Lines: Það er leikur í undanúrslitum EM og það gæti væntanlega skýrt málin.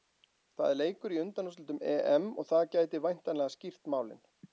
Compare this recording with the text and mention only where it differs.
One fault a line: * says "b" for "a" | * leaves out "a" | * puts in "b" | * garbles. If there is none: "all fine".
all fine